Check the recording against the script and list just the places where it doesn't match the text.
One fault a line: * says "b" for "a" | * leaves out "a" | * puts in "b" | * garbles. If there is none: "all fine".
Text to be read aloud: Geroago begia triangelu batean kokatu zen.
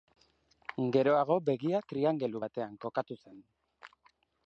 all fine